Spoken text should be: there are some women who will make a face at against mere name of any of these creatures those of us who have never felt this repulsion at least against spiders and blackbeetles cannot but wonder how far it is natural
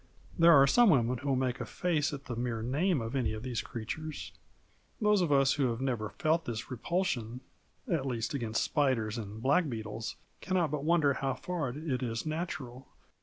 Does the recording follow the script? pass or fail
fail